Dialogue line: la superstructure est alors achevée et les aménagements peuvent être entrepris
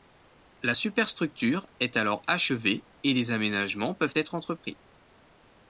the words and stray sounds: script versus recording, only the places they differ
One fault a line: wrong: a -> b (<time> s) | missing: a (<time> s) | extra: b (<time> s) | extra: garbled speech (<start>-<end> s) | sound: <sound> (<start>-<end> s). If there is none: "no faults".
no faults